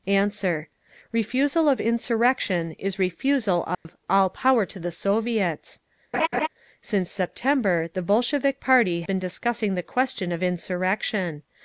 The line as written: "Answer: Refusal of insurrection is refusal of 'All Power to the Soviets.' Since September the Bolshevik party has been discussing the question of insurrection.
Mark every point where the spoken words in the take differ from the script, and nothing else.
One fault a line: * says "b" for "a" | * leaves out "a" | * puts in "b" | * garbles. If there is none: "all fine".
* leaves out "has"